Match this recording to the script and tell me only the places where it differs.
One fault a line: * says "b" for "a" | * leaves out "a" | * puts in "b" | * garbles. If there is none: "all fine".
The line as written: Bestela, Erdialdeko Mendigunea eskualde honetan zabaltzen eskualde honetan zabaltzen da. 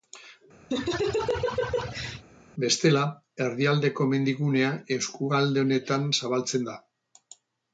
* leaves out "eskualde honetan zabaltzen"